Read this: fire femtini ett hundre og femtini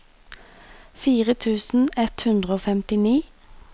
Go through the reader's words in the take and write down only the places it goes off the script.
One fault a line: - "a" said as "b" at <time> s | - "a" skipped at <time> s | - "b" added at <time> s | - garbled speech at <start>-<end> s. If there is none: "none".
- "femtini" said as "tusen" at 1.4 s